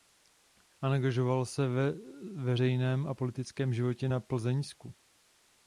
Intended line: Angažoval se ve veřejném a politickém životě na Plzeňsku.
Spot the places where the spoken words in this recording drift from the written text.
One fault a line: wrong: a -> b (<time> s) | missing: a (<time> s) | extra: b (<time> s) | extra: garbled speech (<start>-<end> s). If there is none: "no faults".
no faults